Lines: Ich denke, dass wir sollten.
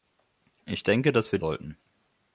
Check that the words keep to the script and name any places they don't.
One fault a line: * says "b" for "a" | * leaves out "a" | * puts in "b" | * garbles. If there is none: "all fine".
all fine